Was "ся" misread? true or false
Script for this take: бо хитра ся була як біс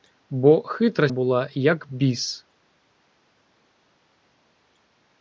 true